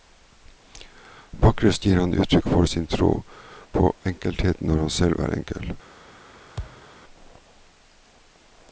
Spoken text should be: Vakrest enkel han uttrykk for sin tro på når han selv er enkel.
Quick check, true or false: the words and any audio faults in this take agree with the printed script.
false